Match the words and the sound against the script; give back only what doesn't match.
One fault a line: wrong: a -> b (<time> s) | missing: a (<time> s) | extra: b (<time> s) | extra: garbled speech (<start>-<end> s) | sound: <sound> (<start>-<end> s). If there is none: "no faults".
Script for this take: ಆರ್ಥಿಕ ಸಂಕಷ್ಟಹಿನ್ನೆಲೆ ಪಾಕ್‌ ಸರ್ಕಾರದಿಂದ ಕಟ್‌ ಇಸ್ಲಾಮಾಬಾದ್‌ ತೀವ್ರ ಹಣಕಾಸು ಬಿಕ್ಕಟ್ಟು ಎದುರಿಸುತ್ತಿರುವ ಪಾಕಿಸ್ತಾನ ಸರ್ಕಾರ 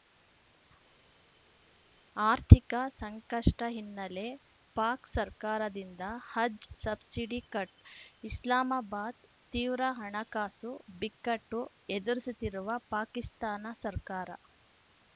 extra: ಹಜ್ ಸಬ್ಸಿಡಿ (6.3 s)